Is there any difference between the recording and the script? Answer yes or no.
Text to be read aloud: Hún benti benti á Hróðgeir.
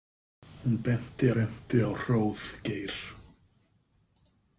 no